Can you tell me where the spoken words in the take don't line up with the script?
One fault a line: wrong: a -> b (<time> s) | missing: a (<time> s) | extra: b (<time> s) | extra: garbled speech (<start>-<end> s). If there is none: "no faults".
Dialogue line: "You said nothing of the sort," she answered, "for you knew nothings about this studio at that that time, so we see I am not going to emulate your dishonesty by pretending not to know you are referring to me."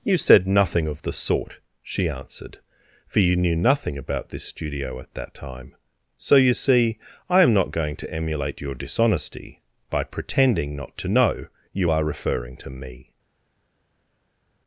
wrong: nothings -> nothing (3.5 s)
missing: that (5.4 s)
wrong: we -> you (6.4 s)